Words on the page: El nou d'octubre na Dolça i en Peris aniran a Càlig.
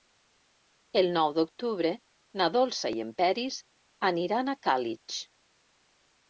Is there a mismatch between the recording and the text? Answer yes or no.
no